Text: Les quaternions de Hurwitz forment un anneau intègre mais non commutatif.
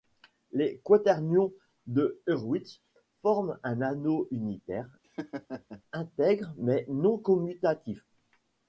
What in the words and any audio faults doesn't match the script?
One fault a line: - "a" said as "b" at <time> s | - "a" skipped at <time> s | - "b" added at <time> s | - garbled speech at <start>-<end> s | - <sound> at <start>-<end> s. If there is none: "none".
- "unitaire" added at 4.3 s
- laugh at 5.0-5.8 s